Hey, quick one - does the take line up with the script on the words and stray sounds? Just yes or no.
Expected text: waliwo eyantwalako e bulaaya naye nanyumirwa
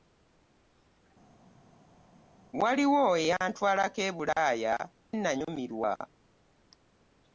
no